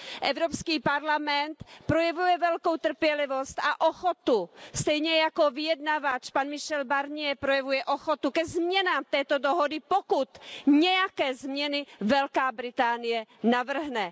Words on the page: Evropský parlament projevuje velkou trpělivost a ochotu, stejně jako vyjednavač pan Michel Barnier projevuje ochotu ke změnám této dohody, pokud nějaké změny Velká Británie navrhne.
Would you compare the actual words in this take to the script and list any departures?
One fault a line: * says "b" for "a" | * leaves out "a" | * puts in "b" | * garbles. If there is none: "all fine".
all fine